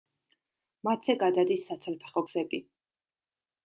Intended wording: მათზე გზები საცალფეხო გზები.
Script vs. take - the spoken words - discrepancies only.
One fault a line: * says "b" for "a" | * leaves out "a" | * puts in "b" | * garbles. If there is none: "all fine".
* says "გადადის" for "გზები"